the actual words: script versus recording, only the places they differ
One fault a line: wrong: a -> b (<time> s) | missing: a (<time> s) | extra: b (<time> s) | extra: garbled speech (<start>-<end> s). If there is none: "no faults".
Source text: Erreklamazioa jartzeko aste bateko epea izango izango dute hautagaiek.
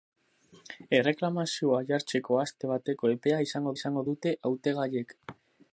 no faults